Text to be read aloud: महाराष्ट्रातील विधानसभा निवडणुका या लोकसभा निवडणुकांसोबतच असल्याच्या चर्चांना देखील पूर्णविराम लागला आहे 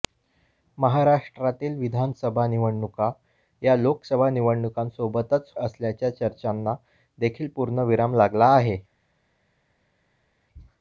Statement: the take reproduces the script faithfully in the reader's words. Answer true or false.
true